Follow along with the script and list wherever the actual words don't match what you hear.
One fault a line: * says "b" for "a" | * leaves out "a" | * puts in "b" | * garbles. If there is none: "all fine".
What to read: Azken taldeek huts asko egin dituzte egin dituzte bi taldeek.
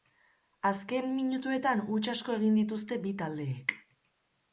* says "minutuetan" for "taldeek"
* leaves out "egin dituzte"